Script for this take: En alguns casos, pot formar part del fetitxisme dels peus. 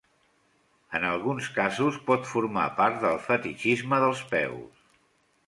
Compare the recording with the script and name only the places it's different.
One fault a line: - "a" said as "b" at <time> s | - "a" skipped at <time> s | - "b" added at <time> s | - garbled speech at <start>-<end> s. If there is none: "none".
none